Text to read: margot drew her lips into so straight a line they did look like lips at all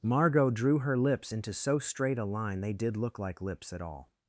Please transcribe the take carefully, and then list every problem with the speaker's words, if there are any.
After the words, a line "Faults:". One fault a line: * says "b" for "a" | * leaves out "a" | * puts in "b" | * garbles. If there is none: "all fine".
margot drew her lips into so straight a line they did look like lips at all
Faults:
all fine